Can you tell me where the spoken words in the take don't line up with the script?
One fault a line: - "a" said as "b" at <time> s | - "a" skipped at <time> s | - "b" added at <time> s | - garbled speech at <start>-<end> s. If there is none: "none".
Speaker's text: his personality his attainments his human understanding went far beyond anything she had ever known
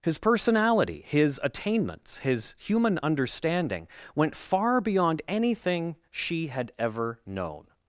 none